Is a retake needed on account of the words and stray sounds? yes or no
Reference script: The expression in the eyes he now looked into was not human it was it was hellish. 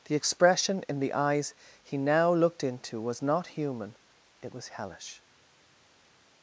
yes